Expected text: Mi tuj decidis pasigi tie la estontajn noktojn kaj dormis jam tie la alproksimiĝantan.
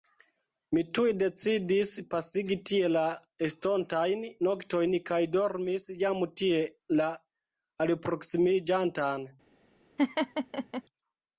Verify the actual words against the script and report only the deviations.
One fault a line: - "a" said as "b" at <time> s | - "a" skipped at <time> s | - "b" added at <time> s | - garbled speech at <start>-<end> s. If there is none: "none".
none